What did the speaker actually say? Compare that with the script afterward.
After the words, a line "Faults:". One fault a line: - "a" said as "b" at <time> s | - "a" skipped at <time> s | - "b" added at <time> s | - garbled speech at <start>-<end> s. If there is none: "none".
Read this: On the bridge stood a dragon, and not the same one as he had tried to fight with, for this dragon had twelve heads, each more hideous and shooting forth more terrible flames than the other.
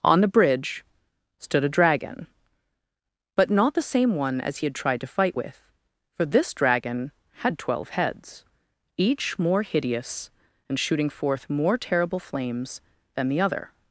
On the bridge stood a dragon, but not the same one as he had tried to fight with, for this dragon had twelve heads, each more hideous and shooting forth more terrible flames than the other.
Faults:
- "and" said as "but" at 3.4 s